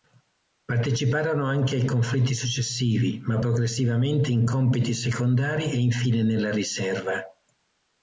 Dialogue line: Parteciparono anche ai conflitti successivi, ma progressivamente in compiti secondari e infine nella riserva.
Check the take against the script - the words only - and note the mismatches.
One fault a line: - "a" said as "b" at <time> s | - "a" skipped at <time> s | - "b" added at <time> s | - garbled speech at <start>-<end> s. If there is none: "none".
none